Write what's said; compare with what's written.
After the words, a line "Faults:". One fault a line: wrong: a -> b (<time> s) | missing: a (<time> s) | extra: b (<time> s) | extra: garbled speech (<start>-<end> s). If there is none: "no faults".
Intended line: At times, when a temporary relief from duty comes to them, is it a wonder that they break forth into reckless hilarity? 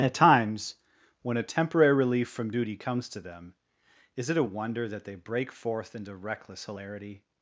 At times, when a temporary relief from duty comes to them, is it a wonder that they break forth into reckless hilarity?
Faults:
no faults